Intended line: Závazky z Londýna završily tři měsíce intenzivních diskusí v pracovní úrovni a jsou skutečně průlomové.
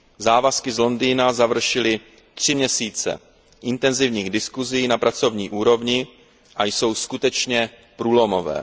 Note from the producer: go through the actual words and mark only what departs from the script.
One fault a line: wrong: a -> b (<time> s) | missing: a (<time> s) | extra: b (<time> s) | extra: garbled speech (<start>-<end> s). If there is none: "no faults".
wrong: v -> na (4.9 s)